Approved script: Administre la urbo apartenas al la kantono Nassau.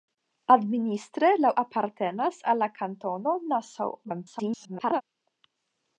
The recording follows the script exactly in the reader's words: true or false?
false